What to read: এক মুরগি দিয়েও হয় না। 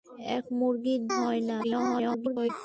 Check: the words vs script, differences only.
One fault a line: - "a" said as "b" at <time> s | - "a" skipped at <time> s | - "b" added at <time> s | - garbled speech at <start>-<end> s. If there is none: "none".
- "দিয়েও" skipped at 0.9 s
- garbled speech at 1.6-2.5 s